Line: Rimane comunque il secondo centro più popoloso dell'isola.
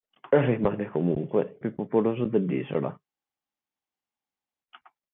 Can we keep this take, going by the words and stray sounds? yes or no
no